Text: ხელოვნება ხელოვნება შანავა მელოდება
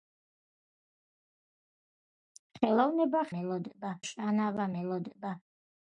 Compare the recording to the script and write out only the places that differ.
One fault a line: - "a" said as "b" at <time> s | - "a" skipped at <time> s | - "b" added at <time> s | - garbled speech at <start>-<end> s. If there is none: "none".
- "ხელოვნება" said as "მელოდება" at 3.4 s